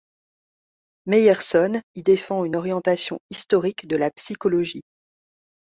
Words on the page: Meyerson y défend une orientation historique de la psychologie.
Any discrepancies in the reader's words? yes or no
no